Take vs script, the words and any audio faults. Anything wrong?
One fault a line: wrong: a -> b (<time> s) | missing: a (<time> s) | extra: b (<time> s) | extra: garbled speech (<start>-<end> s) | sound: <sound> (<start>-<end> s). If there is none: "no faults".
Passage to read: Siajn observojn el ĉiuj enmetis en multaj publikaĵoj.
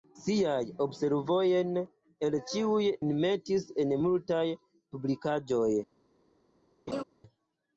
sound: laugh (6.9-7.0 s)